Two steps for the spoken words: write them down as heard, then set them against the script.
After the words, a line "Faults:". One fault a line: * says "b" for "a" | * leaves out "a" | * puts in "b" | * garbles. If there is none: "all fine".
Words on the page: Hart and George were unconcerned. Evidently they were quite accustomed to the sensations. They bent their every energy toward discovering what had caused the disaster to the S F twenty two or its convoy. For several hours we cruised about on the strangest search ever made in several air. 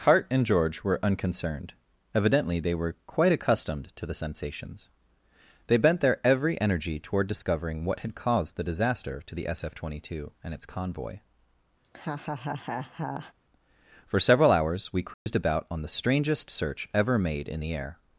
Hart and George were unconcerned. Evidently they were quite accustomed to the sensations. They bent their every energy toward discovering what had caused the disaster to the S F twenty two and its convoy. For several hours we cruised about on the strangest search ever made in the air.
Faults:
* says "and" for "or"
* says "the" for "several"